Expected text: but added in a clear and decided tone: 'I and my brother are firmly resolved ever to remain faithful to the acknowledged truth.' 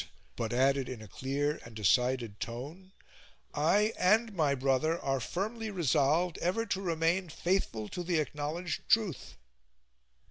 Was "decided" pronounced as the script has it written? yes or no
yes